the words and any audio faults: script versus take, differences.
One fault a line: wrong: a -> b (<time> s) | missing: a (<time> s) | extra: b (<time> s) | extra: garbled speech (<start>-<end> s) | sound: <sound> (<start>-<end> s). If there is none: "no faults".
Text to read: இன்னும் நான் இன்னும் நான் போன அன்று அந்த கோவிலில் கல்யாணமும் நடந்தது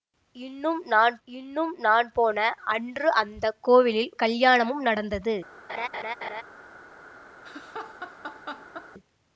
sound: laugh (5.7-6.4 s)
sound: laugh (7.4-8.9 s)